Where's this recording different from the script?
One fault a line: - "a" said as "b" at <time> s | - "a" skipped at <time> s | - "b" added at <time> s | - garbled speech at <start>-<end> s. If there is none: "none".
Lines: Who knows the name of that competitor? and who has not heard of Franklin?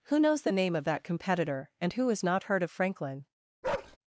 none